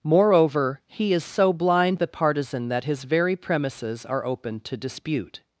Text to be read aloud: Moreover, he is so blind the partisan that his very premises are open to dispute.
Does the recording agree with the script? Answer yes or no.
yes